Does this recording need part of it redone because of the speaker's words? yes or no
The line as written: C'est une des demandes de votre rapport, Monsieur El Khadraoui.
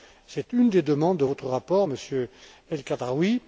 no